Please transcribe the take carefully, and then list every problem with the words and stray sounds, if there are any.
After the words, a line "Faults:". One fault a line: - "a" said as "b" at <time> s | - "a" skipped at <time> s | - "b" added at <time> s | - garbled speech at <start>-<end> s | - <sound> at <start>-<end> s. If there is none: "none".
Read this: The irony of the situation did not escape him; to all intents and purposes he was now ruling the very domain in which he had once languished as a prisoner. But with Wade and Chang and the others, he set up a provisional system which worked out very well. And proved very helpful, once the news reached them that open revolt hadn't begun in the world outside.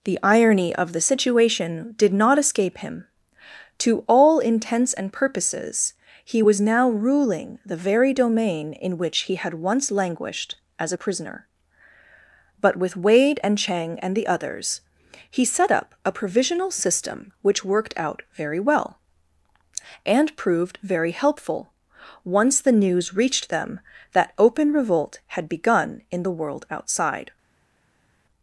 The irony of the situation did not escape him; to all intents and purposes he was now ruling the very domain in which he had once languished as a prisoner. But with Wade and Chang and the others, he set up a provisional system which worked out very well. And proved very helpful, once the news reached them that open revolt had begun in the world outside.
Faults:
- "hadn't" said as "had" at 25.3 s